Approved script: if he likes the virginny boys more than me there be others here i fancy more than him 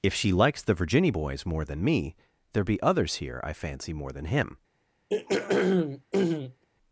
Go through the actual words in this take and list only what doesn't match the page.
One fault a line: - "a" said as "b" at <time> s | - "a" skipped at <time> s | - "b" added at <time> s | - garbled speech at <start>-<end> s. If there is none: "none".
- "he" said as "she" at 0.1 s